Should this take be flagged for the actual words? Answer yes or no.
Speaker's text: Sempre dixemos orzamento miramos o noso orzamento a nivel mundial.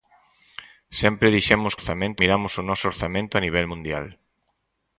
no